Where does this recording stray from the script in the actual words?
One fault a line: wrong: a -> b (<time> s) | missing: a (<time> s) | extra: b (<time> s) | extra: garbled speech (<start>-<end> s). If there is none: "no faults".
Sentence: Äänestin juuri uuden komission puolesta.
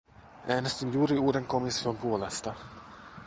no faults